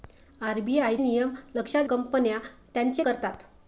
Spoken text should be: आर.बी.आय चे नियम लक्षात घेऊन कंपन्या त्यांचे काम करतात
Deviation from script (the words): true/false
true